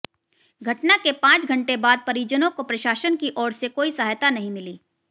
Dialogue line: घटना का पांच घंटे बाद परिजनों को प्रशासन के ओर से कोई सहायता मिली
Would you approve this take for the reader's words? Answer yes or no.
no